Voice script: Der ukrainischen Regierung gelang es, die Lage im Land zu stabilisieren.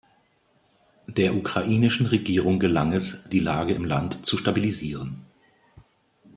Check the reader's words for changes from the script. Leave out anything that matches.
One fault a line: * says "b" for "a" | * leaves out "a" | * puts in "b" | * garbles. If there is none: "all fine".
all fine